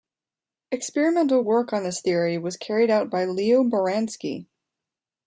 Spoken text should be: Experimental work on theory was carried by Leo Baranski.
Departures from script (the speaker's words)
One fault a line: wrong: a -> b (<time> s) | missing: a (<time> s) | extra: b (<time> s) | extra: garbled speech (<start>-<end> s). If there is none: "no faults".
extra: this (1.8 s)
extra: out (2.9 s)